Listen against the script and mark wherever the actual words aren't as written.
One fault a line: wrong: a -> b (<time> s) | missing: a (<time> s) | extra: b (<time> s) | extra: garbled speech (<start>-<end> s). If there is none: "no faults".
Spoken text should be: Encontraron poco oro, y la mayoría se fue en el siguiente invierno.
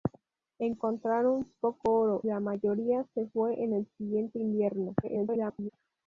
missing: y (2.2 s)
extra: garbled speech (5.0-5.7 s)